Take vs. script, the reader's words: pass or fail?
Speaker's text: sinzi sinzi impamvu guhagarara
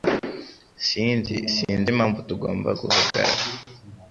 fail